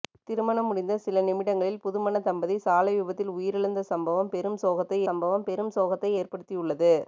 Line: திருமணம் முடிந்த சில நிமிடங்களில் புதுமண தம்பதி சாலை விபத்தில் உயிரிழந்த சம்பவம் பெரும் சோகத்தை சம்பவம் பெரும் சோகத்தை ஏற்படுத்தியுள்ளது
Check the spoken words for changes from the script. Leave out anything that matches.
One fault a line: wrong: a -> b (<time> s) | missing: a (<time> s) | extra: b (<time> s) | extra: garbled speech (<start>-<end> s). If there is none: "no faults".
no faults